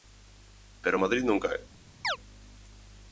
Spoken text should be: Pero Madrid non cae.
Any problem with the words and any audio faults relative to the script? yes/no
yes